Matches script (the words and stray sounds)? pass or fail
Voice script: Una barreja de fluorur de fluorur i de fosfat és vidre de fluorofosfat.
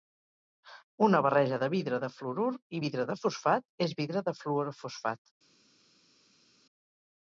fail